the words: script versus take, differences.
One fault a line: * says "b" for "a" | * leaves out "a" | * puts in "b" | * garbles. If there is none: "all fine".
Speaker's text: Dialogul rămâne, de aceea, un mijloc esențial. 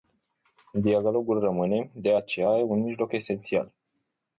all fine